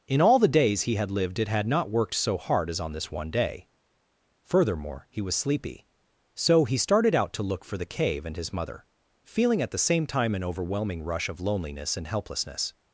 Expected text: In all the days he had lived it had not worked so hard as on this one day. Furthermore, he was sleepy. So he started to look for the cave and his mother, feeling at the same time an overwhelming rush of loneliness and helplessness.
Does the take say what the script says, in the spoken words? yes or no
no